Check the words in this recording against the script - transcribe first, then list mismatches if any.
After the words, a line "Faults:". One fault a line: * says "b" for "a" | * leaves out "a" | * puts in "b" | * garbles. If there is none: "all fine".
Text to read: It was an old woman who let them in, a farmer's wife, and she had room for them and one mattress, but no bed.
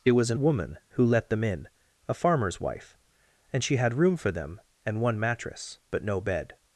It was an woman who let them in, a farmer's wife, and she had room for them and one mattress, but no bed.
Faults:
* leaves out "old"